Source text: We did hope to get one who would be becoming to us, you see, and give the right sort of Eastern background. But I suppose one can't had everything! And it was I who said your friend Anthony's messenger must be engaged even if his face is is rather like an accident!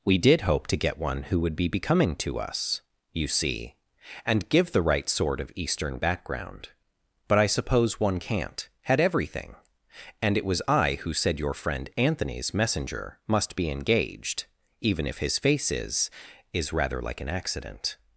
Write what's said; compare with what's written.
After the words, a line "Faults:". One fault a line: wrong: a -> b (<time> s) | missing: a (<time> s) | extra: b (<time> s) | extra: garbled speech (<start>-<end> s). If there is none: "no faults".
We did hope to get one who would be becoming to us, you see, and give the right sort of Eastern background. But I suppose one can't had everything! And it was I who said your friend Anthony's messenger must be engaged even if his face is is rather like an accident!
Faults:
no faults